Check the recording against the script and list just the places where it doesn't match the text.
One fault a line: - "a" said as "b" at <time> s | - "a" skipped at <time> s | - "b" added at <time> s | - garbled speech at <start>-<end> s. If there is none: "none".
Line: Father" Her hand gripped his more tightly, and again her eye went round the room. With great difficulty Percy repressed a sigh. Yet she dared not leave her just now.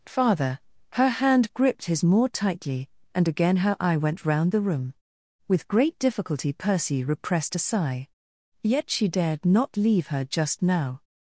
none